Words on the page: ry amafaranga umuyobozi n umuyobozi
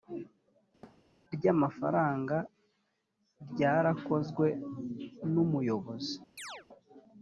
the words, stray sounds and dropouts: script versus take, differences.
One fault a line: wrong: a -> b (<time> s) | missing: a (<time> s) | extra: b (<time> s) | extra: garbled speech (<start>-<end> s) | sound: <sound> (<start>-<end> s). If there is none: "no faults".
sound: thud (0.8-1.1 s)
wrong: umuyobozi -> ryarakozwe (3.5 s)
sound: chirp (6.4-6.7 s)